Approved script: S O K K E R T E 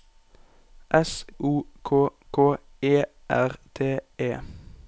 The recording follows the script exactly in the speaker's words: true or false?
true